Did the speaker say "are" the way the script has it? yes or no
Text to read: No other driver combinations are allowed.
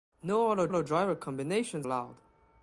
no